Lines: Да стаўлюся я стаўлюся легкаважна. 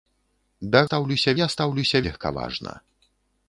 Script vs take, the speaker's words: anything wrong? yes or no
no